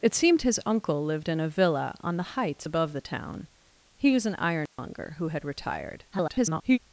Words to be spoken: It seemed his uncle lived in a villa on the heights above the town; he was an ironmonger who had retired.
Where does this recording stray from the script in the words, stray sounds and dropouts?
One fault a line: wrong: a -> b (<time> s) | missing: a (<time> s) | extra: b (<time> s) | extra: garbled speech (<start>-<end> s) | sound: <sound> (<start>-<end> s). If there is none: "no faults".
sound: dropout (4.7-4.8 s)
extra: garbled speech (6.1-6.8 s)